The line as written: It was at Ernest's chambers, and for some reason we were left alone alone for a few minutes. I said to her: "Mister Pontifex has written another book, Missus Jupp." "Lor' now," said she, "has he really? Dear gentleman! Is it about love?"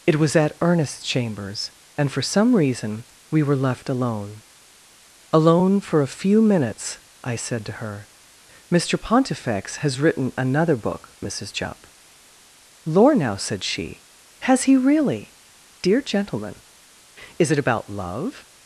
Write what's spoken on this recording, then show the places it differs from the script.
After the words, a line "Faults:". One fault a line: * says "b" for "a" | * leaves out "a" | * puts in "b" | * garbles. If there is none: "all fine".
It was at Ernest's chambers, and for some reason we were left alone alone for a few minutes. I said to her: "Mister Pontifex has written another book, Missus Jupp." "Lor' now," said she, "has he really? Dear gentleman! Is it about love?"
Faults:
all fine